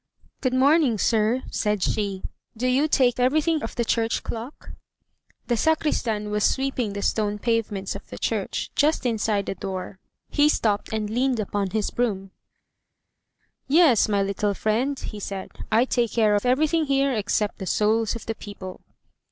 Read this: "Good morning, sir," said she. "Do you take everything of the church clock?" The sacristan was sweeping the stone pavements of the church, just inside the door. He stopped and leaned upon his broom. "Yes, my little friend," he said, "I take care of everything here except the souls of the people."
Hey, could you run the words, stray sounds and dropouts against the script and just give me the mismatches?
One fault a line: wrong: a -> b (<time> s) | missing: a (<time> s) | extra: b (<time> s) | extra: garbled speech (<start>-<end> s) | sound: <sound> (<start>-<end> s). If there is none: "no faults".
no faults